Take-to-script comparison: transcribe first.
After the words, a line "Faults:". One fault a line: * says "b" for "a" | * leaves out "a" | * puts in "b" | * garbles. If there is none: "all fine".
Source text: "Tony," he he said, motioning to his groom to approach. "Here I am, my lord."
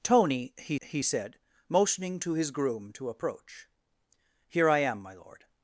"Tony," he he said, motioning to his groom to approach. "Here I am, my lord."
Faults:
all fine